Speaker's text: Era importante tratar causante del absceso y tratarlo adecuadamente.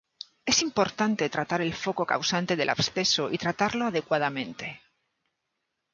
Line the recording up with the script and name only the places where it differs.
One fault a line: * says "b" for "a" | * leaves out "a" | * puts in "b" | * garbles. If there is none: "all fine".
* says "Es" for "Era"
* puts in "el foco"